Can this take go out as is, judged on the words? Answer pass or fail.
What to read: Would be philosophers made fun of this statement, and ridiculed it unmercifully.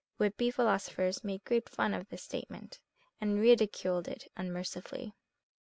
fail